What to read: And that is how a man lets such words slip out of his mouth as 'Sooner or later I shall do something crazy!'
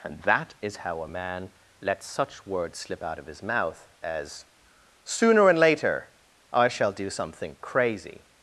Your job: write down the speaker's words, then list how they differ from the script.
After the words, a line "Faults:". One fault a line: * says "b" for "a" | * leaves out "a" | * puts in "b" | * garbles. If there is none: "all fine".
And that is how a man lets such words slip out of his mouth as 'Sooner and later I shall do something crazy!'
Faults:
* says "and" for "or"